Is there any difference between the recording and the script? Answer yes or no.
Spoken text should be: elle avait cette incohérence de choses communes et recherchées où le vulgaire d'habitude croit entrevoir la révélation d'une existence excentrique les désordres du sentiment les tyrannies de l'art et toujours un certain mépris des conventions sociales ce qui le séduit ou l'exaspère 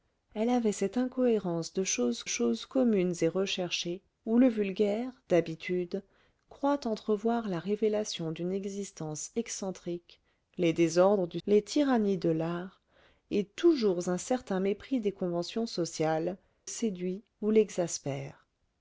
yes